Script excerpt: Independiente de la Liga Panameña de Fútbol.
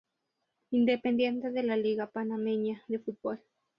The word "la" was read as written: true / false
true